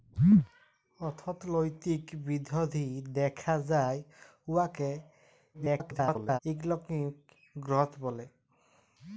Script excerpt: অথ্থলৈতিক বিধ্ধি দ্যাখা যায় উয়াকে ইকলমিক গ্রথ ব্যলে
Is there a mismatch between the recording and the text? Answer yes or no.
yes